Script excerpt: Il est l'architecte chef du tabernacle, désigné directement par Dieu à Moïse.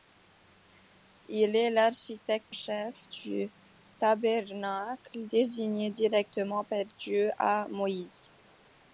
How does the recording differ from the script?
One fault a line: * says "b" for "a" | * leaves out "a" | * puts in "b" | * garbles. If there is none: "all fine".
all fine